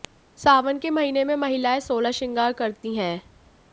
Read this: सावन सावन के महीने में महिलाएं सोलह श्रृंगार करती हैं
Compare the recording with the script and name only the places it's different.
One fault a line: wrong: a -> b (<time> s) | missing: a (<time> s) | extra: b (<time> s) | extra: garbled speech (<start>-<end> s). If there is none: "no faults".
missing: सावन (0.8 s)